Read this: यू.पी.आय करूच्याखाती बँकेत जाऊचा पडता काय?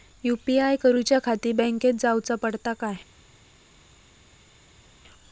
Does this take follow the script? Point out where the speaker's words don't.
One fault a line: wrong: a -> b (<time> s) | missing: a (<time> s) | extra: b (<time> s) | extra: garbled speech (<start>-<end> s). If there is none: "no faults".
no faults